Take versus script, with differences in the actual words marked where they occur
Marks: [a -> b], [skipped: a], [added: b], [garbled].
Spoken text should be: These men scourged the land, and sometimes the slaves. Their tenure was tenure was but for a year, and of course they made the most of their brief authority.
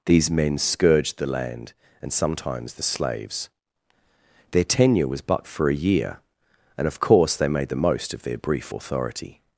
These men scourged the land, and sometimes the slaves. Their tenure was [skipped: tenure was] but for a year, and of course they made the most of their brief authority.